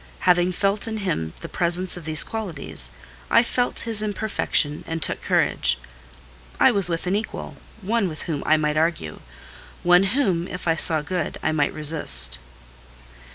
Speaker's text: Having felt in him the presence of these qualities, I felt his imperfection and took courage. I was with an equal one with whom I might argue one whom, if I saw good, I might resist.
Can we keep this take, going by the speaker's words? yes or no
yes